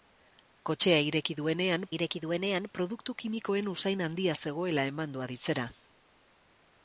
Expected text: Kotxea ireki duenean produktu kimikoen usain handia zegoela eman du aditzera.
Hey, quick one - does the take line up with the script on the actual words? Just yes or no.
no